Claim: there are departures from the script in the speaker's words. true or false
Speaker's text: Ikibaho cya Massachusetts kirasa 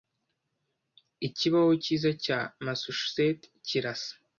true